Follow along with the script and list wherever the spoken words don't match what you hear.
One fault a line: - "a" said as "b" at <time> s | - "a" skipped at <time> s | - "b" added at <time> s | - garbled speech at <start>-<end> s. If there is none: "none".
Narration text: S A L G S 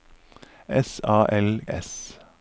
- "G" skipped at 1.6 s